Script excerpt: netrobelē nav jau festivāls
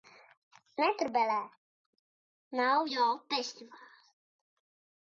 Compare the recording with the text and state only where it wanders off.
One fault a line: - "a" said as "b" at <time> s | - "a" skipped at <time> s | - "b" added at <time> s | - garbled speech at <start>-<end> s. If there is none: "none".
none